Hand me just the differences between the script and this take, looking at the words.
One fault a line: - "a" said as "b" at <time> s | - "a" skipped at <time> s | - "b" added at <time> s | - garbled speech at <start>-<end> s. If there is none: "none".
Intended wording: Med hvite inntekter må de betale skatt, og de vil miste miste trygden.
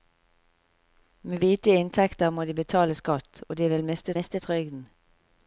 none